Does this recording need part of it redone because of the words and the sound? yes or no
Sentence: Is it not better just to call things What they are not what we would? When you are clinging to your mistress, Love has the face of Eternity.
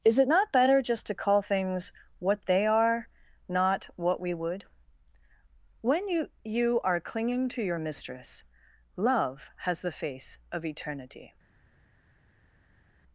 yes